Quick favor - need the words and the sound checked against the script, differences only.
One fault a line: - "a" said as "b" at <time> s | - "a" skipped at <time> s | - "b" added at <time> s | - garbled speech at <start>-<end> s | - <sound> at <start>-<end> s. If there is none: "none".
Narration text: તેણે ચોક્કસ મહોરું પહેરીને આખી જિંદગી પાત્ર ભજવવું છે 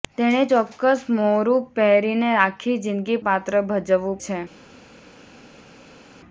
none